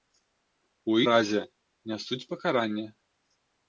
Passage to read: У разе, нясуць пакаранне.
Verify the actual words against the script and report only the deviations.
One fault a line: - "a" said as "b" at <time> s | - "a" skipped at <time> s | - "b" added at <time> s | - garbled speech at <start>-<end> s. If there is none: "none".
none